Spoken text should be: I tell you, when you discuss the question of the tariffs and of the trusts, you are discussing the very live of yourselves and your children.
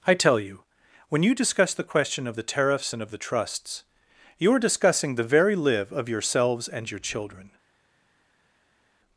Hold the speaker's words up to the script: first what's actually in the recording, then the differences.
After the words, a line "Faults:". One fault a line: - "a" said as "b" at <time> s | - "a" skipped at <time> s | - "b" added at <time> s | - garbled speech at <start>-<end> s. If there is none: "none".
I tell you, when you discuss the question of the tariffs and of the trusts, you are discussing the very live of yourselves and your children.
Faults:
none